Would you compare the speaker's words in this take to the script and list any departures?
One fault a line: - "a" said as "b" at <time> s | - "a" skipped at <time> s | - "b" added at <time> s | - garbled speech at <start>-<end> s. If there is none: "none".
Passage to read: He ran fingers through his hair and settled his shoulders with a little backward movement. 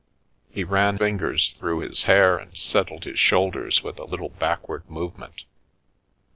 none